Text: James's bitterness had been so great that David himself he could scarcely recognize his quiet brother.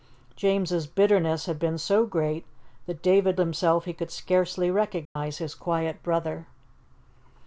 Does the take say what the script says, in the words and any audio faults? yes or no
no